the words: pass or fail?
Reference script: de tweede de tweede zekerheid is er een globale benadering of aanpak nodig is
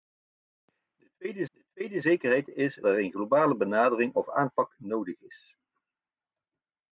pass